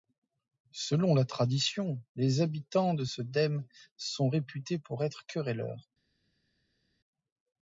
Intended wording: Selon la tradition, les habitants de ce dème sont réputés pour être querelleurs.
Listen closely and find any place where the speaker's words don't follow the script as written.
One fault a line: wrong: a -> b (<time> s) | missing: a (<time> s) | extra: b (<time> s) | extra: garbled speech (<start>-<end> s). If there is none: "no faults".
no faults